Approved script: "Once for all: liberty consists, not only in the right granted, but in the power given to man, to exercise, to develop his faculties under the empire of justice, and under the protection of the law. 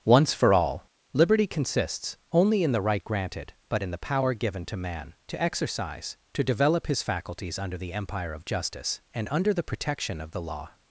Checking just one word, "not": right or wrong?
wrong